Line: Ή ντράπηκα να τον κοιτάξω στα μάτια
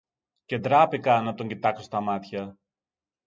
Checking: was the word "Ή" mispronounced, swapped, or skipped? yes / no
yes